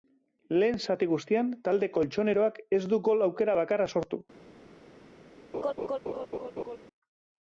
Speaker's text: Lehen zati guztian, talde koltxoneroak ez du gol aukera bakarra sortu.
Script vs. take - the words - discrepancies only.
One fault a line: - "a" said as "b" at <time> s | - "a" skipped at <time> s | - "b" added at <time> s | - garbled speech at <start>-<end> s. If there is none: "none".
none